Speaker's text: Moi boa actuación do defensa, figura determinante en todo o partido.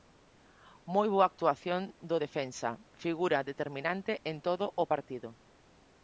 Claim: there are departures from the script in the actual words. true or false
false